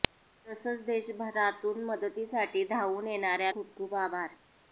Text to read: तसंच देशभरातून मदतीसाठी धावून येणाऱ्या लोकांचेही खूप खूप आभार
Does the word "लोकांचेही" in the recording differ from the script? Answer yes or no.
yes